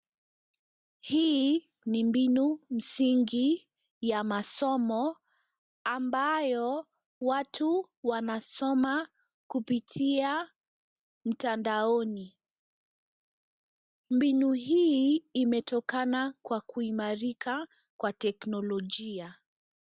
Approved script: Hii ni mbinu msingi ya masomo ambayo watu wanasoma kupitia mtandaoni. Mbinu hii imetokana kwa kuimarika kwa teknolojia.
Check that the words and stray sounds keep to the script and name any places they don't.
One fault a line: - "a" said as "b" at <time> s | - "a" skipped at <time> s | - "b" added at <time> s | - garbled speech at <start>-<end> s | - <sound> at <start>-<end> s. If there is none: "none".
none